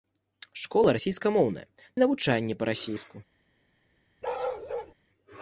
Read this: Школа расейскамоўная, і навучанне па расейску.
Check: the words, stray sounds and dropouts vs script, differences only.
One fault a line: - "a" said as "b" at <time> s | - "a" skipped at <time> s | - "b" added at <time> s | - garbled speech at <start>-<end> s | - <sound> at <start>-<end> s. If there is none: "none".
- bark at 4.2-4.9 s